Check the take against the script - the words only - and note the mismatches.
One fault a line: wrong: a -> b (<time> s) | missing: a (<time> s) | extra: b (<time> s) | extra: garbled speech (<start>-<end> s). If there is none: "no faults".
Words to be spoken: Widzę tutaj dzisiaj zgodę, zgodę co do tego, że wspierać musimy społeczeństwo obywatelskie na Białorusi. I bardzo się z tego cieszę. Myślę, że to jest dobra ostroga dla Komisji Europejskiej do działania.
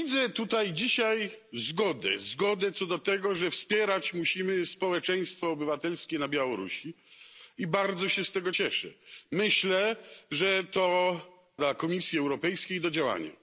missing: jest dobra ostroga (11.2 s)